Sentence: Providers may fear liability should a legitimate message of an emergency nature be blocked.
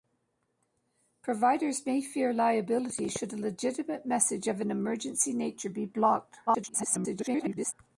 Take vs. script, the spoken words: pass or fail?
fail